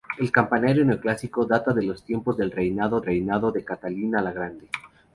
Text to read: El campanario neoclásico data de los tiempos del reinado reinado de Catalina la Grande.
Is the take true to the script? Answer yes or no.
yes